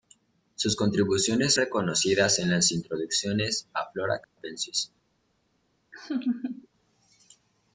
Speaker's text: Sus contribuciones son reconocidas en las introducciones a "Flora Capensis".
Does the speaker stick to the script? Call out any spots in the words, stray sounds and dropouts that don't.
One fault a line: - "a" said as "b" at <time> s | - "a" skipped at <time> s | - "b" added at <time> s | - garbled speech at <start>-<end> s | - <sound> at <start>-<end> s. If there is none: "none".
- "son" skipped at 1.5 s
- dropout at 4.2-4.4 s
- laugh at 5.9-6.7 s